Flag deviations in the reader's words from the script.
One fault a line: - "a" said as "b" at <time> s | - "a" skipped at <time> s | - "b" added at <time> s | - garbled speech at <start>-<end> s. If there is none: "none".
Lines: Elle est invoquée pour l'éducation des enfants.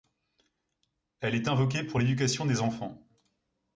none